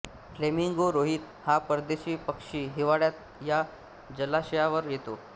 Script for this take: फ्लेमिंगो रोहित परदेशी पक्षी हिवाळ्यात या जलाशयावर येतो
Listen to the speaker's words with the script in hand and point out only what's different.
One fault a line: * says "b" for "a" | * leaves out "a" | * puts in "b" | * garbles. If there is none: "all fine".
* puts in "हा"